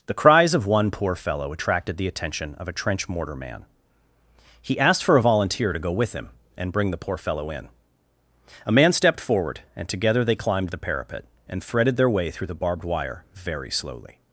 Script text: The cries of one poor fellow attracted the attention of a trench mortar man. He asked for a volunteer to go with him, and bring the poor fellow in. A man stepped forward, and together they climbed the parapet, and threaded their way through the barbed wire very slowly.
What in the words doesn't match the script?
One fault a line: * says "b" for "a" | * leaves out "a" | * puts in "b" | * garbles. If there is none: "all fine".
all fine